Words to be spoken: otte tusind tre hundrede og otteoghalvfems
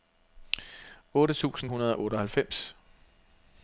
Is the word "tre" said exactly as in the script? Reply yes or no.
no